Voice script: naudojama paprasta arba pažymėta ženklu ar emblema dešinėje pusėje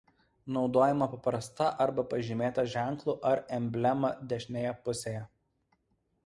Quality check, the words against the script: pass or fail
pass